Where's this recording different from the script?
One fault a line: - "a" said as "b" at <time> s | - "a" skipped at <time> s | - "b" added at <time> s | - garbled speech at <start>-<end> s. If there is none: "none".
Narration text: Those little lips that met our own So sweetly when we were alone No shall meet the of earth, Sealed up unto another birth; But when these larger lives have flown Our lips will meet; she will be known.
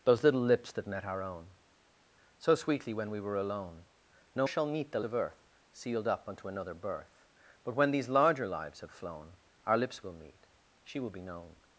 none